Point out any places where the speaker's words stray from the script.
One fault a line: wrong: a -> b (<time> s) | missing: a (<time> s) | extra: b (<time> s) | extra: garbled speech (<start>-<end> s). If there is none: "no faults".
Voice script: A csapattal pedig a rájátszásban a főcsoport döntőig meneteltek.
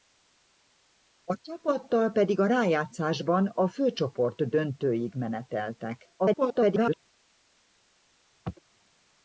extra: garbled speech (6.2-7.0 s)